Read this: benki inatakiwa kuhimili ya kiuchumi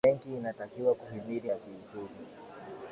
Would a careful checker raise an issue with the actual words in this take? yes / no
no